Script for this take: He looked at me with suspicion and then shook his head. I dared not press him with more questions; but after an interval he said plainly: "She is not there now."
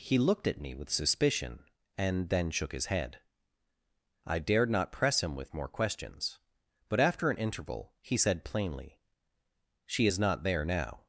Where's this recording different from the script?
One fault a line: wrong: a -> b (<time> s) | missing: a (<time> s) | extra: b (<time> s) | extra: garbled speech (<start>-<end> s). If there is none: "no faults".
no faults